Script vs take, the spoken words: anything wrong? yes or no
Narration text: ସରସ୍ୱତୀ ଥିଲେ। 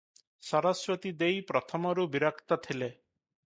yes